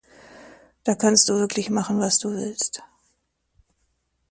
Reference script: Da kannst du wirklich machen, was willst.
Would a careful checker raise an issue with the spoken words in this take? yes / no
yes